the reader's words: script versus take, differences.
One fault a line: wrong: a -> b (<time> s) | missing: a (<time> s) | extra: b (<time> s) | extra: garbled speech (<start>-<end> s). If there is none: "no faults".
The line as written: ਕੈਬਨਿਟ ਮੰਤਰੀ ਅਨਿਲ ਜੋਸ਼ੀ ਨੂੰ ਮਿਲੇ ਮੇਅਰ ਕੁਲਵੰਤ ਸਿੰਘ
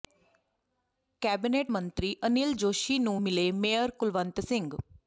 no faults